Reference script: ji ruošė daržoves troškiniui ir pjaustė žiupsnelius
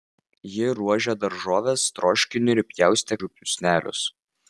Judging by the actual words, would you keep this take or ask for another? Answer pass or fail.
pass